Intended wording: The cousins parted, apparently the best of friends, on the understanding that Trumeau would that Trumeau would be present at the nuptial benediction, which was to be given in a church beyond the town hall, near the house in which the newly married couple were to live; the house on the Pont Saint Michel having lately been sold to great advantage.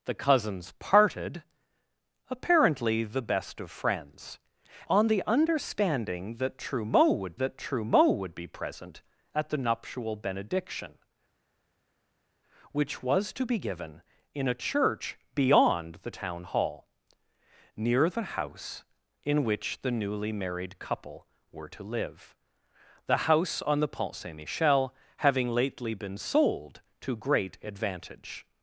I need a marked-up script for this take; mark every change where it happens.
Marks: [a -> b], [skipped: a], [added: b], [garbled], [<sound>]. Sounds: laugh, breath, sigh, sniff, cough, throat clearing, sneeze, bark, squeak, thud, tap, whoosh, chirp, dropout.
The cousins parted, apparently the best of friends, on the understanding that Trumeau would that Trumeau would be present at the nuptial benediction, which was to be given in a church beyond the town hall, near the house in which the newly married couple were to live; the house on the Pont Saint Michel having lately been sold to great advantage.